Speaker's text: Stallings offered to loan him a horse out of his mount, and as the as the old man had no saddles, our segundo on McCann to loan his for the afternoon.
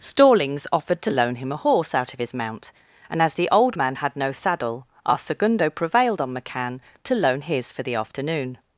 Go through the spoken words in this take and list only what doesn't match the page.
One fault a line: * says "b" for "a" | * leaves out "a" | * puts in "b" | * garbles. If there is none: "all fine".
* leaves out "as the"
* says "saddle" for "saddles"
* puts in "prevailed"